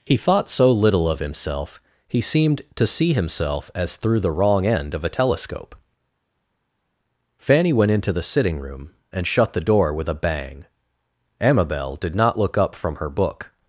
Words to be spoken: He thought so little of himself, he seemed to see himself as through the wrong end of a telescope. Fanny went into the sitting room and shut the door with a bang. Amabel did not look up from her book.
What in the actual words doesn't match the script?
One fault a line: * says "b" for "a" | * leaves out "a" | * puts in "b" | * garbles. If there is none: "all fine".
all fine